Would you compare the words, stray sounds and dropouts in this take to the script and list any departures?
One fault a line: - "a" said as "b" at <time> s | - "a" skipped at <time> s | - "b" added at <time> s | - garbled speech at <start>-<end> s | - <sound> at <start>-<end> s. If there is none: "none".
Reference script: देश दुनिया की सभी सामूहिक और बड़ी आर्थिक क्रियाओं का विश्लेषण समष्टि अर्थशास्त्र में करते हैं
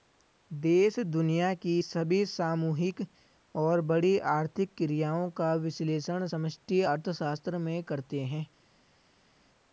none